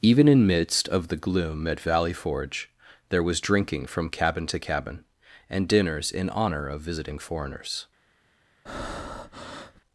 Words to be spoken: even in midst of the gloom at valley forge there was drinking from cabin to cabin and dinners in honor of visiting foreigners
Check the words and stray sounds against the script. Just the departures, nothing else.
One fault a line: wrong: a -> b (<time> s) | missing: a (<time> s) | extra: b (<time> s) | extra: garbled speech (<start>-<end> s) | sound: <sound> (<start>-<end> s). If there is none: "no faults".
sound: breath (8.7-9.8 s)